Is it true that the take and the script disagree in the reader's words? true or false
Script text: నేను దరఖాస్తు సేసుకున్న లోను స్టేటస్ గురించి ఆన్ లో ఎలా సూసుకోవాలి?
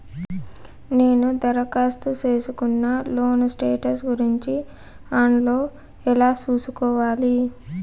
false